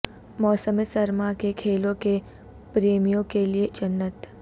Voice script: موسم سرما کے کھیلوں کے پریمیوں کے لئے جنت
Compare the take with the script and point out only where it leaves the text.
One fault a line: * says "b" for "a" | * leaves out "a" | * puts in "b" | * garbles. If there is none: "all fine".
all fine